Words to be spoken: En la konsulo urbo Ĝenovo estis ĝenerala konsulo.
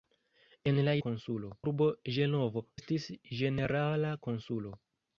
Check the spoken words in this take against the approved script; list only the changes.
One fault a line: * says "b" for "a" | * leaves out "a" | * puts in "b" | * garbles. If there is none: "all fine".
all fine